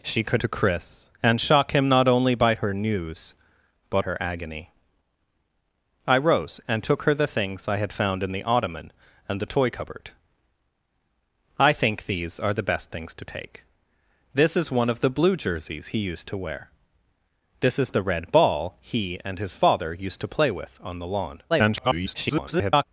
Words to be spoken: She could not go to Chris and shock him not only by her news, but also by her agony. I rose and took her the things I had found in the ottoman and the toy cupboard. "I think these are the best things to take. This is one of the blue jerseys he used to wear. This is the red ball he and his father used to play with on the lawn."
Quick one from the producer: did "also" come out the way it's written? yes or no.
no